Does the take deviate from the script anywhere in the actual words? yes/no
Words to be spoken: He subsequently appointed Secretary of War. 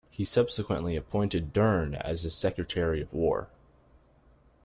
yes